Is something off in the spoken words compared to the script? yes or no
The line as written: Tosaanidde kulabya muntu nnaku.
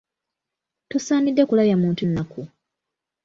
no